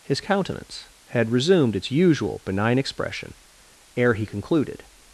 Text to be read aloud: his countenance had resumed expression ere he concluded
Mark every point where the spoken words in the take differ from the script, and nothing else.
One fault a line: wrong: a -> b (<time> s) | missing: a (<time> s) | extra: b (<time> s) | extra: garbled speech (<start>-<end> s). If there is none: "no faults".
extra: its usual benign (1.8 s)